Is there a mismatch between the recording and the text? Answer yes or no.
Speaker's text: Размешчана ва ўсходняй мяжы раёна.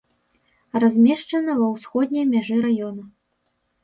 no